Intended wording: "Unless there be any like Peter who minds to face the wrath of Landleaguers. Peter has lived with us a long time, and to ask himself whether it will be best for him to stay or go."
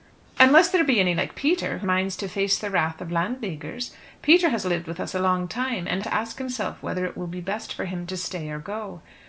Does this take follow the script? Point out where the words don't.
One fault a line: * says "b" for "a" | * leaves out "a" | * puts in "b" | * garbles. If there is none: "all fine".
all fine